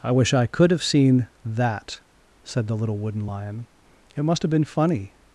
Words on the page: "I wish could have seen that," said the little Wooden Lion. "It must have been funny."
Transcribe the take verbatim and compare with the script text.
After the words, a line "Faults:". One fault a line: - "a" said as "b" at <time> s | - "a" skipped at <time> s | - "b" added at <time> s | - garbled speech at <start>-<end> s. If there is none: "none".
"I wish I could have seen that," said the little Wooden Lion. "It must have been funny."
Faults:
- "I" added at 0.3 s